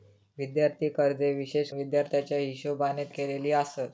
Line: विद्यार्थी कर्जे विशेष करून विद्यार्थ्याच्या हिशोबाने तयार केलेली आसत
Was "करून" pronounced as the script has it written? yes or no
no